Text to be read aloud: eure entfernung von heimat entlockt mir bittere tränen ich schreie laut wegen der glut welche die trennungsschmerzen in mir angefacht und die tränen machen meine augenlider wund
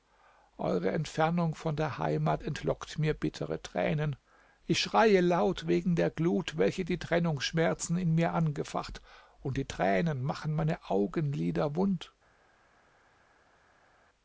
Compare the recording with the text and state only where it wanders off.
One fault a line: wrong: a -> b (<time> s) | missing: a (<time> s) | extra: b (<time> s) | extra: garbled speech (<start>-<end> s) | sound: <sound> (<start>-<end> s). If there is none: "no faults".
extra: der (1.8 s)